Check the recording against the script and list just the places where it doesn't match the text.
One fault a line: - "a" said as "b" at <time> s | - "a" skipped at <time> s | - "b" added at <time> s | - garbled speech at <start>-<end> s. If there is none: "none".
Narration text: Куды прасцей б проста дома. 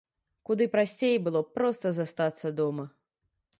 - "было" added at 1.3 s
- "застацца" added at 2.0 s